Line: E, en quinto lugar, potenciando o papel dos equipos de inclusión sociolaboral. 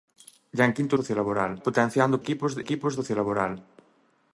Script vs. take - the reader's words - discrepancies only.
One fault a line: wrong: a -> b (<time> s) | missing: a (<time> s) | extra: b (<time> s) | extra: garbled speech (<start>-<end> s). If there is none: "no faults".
wrong: lugar -> sociolaboral (1.0 s)
missing: papel dos (2.2 s)
wrong: inclusión -> equipos (2.6 s)